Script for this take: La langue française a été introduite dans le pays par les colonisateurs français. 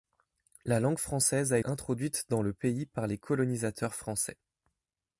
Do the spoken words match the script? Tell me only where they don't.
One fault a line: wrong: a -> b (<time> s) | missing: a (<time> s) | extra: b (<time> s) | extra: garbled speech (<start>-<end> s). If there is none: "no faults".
missing: été (1.6 s)